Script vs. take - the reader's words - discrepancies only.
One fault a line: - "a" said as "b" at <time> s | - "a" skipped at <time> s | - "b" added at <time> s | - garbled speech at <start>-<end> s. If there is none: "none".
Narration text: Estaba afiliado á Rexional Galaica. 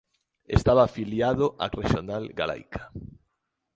none